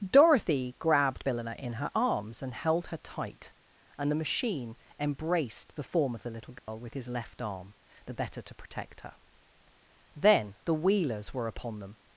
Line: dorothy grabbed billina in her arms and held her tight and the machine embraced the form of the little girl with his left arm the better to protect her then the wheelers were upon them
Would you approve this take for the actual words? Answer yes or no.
yes